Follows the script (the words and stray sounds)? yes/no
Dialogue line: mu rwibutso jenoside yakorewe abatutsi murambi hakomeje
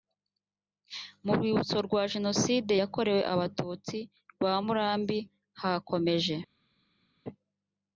no